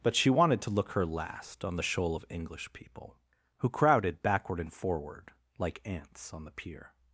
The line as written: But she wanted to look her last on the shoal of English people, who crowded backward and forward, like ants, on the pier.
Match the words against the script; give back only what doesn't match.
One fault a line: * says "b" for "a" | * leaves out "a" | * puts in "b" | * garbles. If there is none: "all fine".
all fine